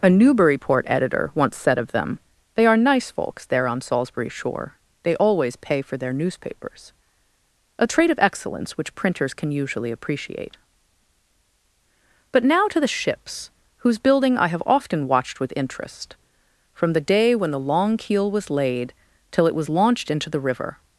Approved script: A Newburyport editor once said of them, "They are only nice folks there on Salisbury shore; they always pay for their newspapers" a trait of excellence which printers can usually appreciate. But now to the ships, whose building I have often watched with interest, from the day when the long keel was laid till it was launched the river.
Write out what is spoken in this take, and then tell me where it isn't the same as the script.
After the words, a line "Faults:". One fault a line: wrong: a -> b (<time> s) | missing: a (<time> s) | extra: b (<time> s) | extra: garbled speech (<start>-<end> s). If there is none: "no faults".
A Newburyport editor once said of them, "They are nice folks there on Salisbury shore; they always pay for their newspapers" a trait of excellence which printers can usually appreciate. But now to the ships, whose building I have often watched with interest, from the day when the long keel was laid till it was launched into the river.
Faults:
missing: only (2.8 s)
extra: into (20.1 s)